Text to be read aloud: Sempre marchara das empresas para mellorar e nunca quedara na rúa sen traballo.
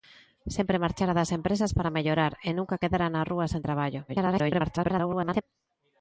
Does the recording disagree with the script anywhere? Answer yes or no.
yes